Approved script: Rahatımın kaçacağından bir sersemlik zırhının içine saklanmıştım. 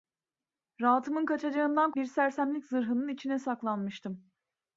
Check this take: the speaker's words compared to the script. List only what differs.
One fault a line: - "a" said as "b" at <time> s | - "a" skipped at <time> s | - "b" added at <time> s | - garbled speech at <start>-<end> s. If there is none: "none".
none